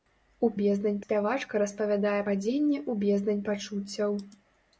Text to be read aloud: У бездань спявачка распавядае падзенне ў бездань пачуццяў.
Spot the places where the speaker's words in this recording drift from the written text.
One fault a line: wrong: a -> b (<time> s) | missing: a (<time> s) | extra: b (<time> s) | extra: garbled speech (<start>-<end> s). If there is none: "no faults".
no faults